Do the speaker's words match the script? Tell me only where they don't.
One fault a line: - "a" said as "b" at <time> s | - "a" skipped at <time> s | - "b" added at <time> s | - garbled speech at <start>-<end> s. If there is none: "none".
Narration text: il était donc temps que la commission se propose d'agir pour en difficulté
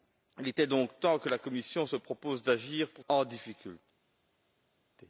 none